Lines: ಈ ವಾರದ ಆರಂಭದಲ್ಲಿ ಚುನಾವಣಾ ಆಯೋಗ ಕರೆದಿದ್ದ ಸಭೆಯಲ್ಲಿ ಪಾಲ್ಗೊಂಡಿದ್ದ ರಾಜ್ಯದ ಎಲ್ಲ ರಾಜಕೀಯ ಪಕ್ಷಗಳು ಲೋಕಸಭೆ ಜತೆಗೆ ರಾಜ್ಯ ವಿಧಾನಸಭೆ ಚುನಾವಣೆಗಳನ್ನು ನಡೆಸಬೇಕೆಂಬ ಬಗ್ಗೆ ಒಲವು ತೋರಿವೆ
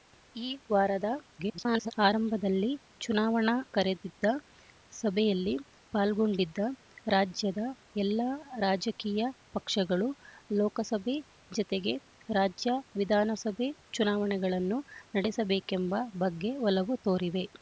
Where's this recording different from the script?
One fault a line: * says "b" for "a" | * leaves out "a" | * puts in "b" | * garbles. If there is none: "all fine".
* garbles
* leaves out "ಆಯೋಗ"